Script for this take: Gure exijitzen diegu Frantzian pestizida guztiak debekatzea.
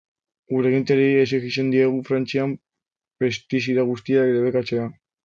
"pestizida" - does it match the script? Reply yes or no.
yes